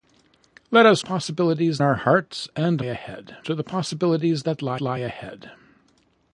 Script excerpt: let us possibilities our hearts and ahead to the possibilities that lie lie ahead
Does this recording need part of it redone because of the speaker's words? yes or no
no